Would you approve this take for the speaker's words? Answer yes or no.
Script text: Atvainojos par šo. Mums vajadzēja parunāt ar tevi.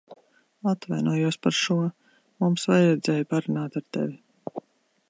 yes